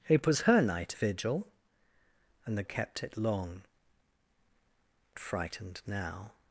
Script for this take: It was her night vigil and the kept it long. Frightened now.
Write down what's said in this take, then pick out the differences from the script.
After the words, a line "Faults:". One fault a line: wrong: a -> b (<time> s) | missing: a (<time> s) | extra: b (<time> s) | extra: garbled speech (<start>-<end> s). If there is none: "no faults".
It was her night vigil and the kept it long. Frightened now.
Faults:
no faults